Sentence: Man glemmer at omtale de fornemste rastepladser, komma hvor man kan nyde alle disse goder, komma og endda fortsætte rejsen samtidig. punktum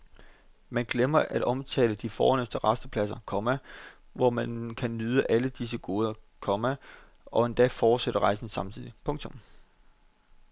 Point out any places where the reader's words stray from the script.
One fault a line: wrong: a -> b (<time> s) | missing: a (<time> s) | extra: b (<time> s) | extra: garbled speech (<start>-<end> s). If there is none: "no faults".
no faults